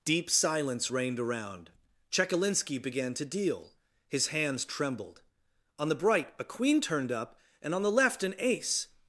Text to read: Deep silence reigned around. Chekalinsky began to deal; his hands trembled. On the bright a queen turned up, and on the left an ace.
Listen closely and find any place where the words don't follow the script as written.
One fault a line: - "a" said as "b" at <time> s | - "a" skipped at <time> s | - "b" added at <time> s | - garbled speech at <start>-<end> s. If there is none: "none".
none